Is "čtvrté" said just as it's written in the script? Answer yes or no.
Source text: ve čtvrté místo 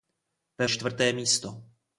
yes